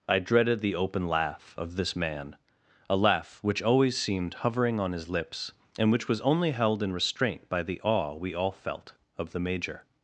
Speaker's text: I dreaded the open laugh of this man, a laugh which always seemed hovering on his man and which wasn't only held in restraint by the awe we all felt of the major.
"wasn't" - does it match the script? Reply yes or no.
no